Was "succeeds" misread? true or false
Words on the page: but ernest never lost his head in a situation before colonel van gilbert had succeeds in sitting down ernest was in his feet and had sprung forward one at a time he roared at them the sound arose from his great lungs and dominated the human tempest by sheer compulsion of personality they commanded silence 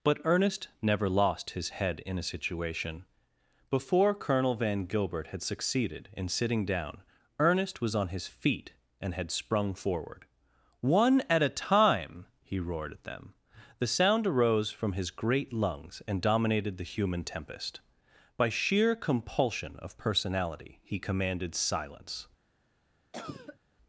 true